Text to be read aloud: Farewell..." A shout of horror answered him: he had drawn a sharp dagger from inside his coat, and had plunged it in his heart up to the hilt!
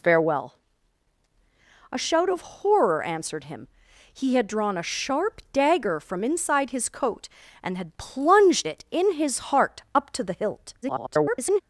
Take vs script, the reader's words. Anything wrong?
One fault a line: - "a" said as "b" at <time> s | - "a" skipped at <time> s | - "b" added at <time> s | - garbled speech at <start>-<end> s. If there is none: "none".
- garbled speech at 10.8-11.6 s